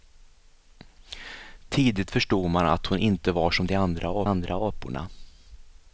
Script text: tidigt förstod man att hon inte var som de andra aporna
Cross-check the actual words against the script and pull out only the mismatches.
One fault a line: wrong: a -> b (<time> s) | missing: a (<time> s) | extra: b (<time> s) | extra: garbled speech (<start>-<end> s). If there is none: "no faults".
extra: andra (4.2 s)